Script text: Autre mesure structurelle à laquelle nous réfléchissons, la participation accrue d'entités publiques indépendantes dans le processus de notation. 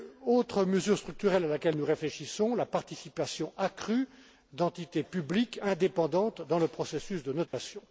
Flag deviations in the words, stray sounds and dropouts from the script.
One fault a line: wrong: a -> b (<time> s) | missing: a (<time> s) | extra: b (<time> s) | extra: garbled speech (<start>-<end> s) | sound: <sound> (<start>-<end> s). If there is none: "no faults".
sound: dropout (7.5-7.5 s)